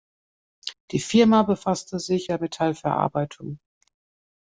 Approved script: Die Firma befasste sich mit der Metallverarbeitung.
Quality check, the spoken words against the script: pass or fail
fail